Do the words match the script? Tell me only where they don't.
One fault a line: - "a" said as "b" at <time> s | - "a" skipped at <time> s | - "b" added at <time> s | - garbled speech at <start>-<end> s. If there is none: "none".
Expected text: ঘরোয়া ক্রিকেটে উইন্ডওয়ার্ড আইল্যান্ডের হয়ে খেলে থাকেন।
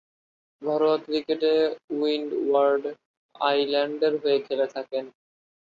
none